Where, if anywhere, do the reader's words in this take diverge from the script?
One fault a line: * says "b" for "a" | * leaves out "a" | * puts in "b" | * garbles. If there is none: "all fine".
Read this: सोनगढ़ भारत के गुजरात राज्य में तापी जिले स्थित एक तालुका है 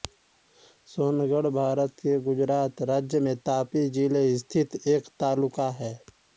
all fine